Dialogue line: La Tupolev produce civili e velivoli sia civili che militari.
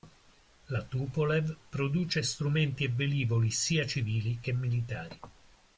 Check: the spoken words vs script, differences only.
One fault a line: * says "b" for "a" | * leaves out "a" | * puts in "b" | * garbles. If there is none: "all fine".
* says "strumenti" for "civili"